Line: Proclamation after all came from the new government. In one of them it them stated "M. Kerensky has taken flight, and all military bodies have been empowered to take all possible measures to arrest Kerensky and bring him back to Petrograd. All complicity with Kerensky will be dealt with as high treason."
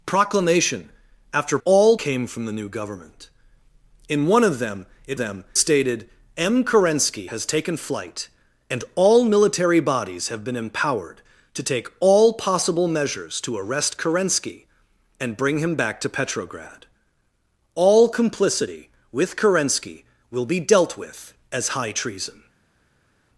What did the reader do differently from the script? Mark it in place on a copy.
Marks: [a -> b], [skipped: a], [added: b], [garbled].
Proclamation after all came from the new government. In one of them it them stated "M. Kerensky has taken flight, and all military bodies have been empowered to take all possible measures to arrest Kerensky and bring him back to Petrograd. All complicity with Kerensky will be dealt with as high treason."